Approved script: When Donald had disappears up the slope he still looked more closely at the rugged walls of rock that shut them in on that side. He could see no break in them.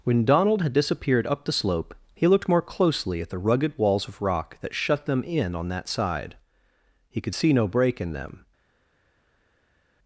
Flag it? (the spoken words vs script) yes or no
yes